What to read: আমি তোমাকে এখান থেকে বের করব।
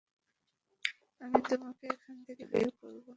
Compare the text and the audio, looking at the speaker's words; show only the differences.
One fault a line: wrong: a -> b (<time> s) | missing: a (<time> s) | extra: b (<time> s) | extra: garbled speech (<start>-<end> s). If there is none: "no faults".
no faults